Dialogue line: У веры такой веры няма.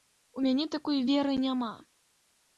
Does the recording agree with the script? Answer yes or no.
no